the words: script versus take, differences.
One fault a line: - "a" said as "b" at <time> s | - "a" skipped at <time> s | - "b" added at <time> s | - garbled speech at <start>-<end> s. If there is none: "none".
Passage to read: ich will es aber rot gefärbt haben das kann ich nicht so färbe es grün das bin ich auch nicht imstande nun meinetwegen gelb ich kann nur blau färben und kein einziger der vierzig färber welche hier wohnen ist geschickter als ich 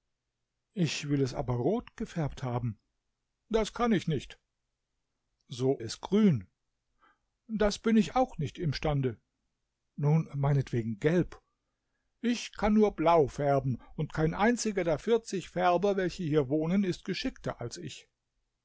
- "färbe" skipped at 5.8 s